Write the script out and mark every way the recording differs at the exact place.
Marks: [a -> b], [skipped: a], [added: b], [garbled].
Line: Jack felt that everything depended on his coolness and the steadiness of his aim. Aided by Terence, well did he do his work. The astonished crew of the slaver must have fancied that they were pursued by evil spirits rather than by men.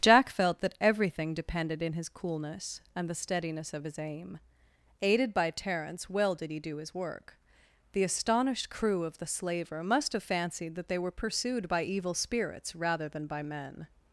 Jack felt that everything depended [on -> in] his coolness and the steadiness of his aim. Aided by Terence, well did he do his work. The astonished crew of the slaver must have fancied that they were pursued by evil spirits rather than by men.